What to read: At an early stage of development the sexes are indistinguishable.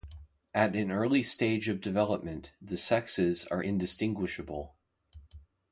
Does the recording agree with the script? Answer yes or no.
yes